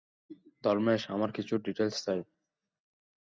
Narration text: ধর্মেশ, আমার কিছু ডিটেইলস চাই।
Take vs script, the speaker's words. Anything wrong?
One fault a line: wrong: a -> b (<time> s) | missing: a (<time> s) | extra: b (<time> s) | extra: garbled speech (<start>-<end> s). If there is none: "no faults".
no faults